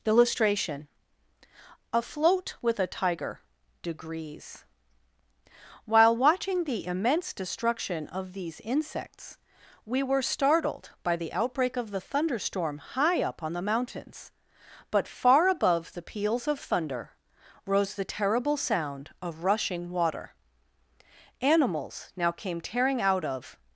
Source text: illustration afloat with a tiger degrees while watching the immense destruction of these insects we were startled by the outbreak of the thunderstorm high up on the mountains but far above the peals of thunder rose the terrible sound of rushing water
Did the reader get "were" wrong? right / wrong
right